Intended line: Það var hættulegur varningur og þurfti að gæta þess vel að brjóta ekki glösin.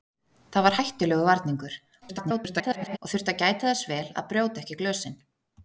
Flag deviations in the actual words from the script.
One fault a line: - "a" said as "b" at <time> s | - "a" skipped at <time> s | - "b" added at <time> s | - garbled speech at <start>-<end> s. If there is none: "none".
- garbled speech at 2.0-3.0 s